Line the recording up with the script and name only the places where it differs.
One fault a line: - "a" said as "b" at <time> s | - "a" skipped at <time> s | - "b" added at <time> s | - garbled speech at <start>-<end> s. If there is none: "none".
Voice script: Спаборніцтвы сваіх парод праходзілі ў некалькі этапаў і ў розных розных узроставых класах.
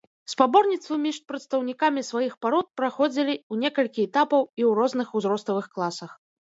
- "між прадстаўнікамі" added at 1.0 s
- "розных" skipped at 5.1 s